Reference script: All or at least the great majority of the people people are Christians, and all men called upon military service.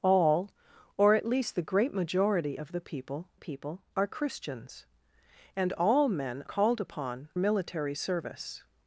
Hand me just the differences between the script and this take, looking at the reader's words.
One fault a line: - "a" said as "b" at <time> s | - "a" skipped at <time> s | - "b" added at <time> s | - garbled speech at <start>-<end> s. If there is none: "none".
none